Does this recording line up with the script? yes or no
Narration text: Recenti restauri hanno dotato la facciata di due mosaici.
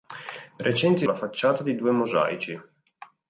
no